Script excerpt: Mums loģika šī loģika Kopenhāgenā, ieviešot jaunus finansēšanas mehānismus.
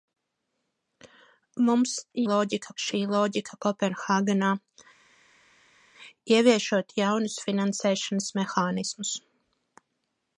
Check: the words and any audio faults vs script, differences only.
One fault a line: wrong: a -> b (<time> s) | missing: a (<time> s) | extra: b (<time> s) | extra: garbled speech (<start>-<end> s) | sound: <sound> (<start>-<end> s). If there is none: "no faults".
no faults